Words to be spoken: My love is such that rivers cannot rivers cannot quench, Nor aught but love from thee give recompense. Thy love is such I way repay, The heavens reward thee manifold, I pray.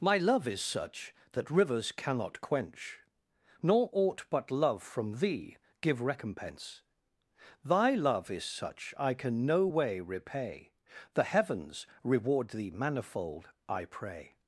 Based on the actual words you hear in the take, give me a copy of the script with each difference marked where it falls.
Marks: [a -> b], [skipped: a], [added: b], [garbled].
My love is such that rivers cannot [skipped: rivers cannot] quench, Nor aught but love from thee give recompense. Thy love is such I [added: can no] way repay, The heavens reward thee manifold, I pray.